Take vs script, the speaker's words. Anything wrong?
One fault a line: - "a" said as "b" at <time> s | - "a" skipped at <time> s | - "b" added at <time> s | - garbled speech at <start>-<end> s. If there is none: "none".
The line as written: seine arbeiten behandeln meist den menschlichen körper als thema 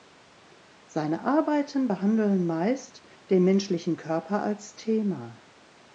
none